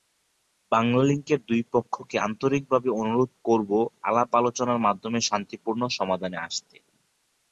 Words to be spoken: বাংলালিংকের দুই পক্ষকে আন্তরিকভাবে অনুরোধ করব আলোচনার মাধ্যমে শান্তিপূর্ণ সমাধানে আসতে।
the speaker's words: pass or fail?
fail